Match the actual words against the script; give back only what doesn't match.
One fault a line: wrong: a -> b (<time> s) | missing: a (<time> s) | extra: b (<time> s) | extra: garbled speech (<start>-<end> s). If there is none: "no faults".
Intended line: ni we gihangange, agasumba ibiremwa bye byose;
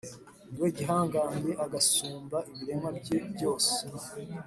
no faults